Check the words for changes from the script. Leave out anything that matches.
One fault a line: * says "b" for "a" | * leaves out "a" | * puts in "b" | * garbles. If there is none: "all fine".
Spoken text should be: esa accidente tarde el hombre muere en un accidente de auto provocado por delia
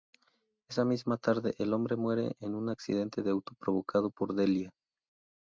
* says "misma" for "accidente"